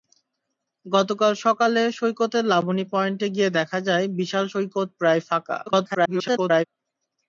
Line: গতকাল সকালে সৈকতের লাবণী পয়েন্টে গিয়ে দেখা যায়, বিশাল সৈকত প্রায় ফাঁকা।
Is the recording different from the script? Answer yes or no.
yes